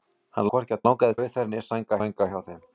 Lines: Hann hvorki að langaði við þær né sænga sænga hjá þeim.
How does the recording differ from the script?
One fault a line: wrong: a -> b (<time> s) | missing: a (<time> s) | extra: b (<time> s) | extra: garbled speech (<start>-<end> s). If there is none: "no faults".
no faults